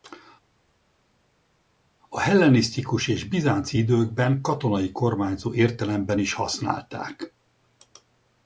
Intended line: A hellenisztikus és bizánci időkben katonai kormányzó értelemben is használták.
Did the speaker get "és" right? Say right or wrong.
right